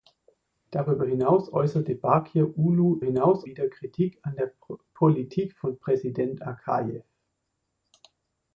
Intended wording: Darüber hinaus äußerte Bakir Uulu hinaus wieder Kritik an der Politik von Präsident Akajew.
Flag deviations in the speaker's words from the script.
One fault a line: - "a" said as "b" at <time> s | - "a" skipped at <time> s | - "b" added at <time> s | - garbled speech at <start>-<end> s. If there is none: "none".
none